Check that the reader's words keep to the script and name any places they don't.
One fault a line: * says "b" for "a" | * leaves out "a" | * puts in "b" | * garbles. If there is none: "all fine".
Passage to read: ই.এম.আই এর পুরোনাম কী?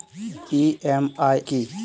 * leaves out "এর পুরোনাম"